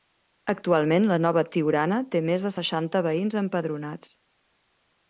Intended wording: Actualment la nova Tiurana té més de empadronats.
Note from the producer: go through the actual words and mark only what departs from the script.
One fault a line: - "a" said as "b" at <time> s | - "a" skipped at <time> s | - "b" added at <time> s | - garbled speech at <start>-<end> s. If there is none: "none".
- "seixanta veïns" added at 2.6 s